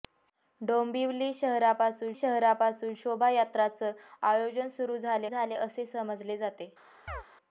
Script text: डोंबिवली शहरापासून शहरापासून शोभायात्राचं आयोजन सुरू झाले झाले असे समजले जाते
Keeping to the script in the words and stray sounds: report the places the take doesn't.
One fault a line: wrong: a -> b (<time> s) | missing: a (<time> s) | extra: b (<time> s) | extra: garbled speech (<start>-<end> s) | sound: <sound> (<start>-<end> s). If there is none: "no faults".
sound: chirp (7.1-7.2 s)